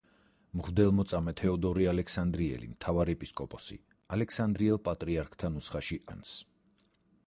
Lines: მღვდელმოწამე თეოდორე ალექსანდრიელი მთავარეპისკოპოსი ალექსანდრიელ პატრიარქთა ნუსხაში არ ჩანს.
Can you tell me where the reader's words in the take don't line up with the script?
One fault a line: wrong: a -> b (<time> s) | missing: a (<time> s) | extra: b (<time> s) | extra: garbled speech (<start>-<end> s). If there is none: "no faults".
missing: არ (6.0 s)